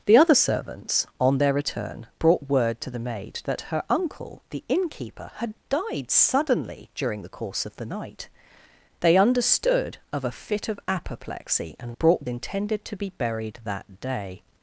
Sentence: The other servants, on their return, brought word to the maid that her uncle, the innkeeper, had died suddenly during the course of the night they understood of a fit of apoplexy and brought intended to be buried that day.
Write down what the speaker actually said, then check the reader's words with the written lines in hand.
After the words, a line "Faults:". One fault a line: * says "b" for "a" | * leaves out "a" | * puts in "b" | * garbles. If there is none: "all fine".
The other servants, on their return, brought word to the maid that her uncle, the innkeeper, had died suddenly during the course of the night they understood of a fit of apoplexy and brought intended to be buried that day.
Faults:
all fine